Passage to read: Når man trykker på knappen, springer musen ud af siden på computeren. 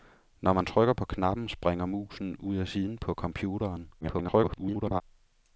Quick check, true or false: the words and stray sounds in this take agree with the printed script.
false